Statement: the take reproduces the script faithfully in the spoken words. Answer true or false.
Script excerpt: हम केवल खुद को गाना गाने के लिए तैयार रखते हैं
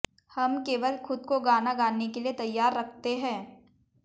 true